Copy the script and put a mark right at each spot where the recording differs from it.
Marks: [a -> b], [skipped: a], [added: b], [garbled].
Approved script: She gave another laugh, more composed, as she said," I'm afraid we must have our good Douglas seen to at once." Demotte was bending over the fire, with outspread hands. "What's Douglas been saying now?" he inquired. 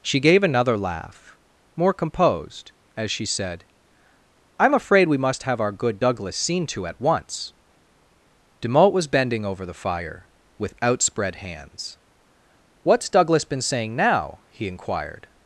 She gave another laugh, more composed, as she said," I'm afraid we must have our good Douglas seen to at once." Demotte was bending over the fire, with outspread hands. "What's Douglas been saying now?" he inquired.